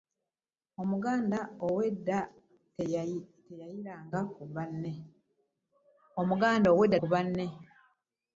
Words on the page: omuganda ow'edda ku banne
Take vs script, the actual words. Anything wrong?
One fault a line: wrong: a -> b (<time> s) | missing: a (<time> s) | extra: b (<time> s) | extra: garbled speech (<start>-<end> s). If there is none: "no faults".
no faults